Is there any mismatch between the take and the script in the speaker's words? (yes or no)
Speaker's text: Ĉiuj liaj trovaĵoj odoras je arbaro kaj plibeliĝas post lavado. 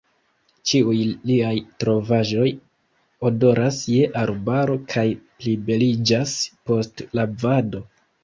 no